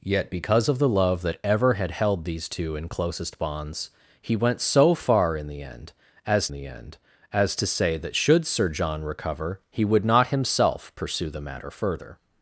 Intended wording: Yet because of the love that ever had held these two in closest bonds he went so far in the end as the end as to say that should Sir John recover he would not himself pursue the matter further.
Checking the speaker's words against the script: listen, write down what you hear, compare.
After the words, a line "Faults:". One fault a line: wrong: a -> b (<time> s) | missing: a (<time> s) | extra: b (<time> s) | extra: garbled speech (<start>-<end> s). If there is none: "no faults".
Yet because of the love that ever had held these two in closest bonds he went so far in the end as the end as to say that should Sir John recover he would not himself pursue the matter further.
Faults:
no faults